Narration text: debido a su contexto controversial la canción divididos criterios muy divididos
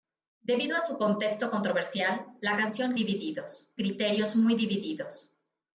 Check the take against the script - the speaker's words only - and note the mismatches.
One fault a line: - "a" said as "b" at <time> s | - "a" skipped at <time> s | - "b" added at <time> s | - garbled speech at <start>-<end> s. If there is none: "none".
none